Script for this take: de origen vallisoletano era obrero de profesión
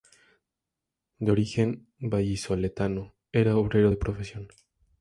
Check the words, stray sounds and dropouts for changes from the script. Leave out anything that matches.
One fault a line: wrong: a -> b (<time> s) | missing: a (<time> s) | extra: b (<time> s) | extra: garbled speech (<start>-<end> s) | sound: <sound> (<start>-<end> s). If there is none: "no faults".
no faults